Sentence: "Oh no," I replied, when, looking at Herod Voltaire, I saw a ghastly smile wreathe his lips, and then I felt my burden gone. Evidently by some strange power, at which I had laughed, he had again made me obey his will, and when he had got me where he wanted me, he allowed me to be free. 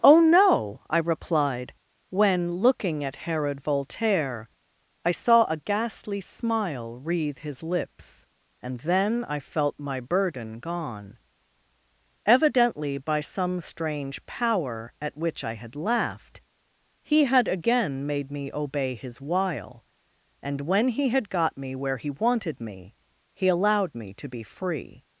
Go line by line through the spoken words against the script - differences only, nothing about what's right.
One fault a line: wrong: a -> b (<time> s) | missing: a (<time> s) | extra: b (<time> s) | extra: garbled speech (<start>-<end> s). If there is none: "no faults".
wrong: will -> while (19.2 s)